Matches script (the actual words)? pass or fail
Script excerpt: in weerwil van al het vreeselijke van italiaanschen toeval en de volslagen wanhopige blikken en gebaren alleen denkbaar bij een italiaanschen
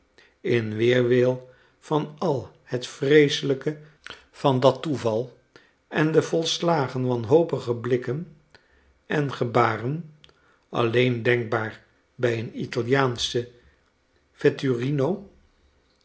fail